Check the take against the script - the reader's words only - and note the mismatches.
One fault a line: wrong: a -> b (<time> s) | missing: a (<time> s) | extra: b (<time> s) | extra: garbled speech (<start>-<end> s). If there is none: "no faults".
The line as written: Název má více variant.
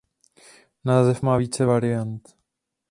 no faults